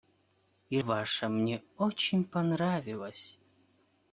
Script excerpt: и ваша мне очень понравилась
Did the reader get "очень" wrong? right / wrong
right